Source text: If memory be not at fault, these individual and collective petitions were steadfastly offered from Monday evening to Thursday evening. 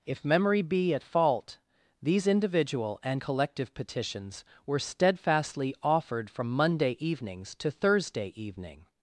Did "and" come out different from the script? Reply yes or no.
no